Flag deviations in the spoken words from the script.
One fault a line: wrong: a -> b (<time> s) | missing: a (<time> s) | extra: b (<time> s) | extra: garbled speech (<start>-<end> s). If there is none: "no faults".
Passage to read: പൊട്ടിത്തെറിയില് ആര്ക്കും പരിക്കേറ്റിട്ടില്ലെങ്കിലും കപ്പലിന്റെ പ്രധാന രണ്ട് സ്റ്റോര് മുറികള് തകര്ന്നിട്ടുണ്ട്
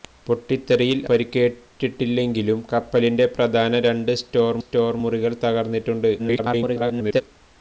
missing: ആര്ക്കും (1.0 s)
extra: സ്റ്റോര് (4.6 s)
extra: garbled speech (6.2-7.2 s)